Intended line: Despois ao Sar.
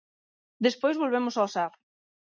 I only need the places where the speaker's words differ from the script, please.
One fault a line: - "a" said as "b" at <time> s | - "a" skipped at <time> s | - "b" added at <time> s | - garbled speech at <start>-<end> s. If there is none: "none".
- "volvemos" added at 1.0 s